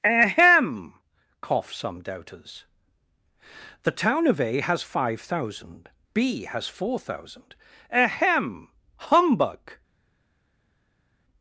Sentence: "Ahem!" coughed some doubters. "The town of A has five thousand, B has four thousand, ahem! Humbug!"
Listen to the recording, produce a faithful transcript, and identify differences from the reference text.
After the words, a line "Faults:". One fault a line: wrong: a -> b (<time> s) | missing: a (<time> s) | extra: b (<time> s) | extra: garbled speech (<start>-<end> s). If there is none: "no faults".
"Ahem!" cough some doubters. "The town of A has five thousand, B has four thousand, ahem! Humbug!"
Faults:
wrong: coughed -> cough (1.4 s)